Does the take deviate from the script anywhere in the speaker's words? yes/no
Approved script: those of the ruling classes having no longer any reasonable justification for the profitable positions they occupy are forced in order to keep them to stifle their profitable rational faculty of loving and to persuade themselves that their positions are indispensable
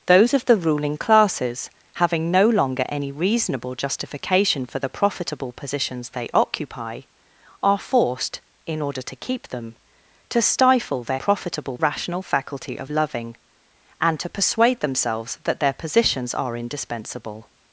no